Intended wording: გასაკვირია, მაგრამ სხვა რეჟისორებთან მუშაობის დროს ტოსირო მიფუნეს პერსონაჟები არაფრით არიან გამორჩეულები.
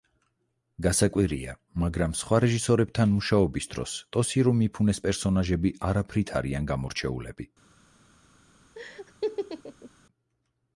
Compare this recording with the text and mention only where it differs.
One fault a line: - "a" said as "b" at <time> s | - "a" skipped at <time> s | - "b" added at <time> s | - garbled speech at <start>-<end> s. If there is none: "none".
none